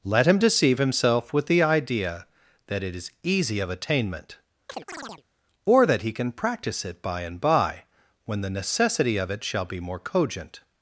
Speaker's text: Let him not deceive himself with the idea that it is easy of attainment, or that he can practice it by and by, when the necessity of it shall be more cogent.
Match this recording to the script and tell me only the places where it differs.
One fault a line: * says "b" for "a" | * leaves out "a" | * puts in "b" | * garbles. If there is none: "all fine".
* leaves out "not"